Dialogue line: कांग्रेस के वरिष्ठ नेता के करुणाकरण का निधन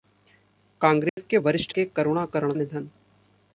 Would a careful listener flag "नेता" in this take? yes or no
yes